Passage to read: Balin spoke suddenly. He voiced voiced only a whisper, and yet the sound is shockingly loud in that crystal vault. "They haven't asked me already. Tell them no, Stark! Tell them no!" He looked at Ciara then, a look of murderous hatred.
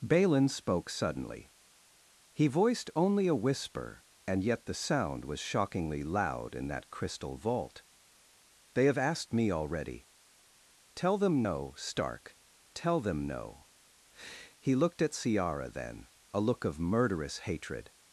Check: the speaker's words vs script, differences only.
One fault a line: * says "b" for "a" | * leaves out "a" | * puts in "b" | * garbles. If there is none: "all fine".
* leaves out "voiced"
* says "was" for "is"
* says "have" for "haven't"